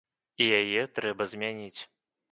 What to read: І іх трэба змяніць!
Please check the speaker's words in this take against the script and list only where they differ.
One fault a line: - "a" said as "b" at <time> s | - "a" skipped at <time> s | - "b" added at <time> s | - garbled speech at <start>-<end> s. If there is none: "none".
- "іх" said as "яе" at 0.6 s